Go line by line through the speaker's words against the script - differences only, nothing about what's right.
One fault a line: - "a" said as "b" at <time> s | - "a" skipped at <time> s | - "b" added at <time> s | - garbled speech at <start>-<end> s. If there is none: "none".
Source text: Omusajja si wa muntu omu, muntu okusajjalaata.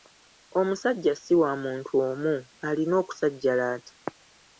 - "muntu" said as "alina" at 2.7 s